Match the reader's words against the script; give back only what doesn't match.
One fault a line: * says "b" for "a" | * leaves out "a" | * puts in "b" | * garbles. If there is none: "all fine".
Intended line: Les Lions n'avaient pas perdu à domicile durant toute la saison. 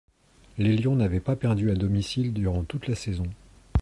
all fine